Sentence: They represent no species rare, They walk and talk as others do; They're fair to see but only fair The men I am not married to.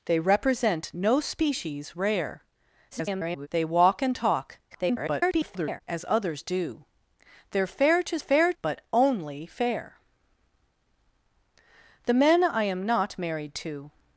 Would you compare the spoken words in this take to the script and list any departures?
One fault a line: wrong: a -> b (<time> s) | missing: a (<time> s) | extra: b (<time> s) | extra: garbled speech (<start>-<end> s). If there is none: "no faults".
extra: garbled speech (2.9-3.5 s)
extra: garbled speech (4.7-5.8 s)
wrong: see -> fair (8.2 s)